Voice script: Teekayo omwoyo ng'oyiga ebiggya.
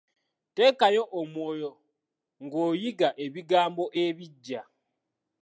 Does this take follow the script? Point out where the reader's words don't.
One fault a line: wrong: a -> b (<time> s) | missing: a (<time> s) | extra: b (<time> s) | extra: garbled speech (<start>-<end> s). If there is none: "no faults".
extra: ebigambo (3.2 s)